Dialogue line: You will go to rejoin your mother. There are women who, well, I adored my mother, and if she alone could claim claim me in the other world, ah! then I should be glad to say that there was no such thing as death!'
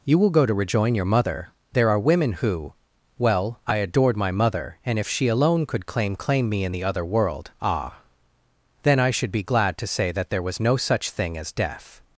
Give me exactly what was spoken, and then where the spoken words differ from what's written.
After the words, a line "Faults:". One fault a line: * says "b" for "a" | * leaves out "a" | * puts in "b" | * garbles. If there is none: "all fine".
You will go to rejoin your mother. There are women who, well, I adored my mother, and if she alone could claim claim me in the other world, ah! then I should be glad to say that there was no such thing as death!'
Faults:
all fine